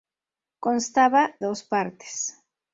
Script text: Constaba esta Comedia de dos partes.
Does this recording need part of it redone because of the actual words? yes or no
yes